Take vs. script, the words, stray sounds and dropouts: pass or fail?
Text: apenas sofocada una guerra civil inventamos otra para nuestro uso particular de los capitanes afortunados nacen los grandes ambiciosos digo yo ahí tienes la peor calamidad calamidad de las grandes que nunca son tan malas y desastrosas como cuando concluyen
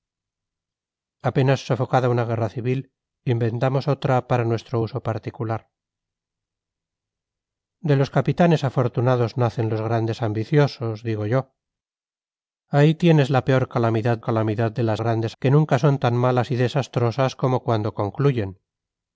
pass